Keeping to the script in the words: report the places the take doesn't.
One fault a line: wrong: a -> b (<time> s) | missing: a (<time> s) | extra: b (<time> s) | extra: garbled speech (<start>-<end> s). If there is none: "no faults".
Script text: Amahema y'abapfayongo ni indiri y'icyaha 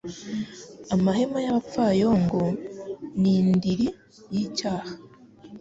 no faults